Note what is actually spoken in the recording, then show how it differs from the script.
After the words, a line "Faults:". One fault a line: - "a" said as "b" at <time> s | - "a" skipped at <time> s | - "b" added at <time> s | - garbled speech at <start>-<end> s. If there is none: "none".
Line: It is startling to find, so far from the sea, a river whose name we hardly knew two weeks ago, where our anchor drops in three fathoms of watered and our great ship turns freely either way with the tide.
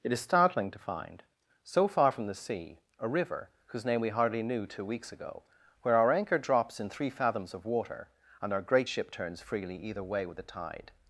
It is startling to find, so far from the sea, a river whose name we hardly knew two weeks ago, where our anchor drops in three fathoms of water and our great ship turns freely either way with the tide.
Faults:
- "watered" said as "water" at 7.7 s